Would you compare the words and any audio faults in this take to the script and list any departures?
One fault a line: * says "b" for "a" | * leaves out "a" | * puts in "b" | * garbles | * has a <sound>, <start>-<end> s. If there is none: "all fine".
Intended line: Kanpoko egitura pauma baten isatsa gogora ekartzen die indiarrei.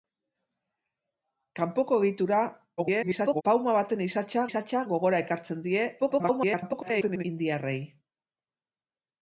* garbles
* puts in "isatsa"
* garbles